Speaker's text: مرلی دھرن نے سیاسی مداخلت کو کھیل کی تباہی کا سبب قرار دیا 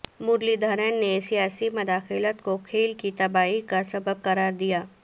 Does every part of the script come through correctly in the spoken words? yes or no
yes